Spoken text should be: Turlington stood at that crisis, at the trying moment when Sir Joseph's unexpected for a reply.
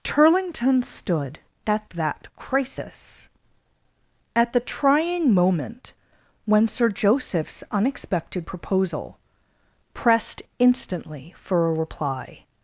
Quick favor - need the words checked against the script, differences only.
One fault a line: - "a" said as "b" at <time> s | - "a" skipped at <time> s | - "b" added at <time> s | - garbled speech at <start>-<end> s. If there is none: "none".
- "proposal pressed instantly" added at 8.5 s